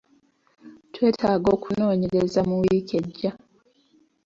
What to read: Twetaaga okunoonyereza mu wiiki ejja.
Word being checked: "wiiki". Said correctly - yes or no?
yes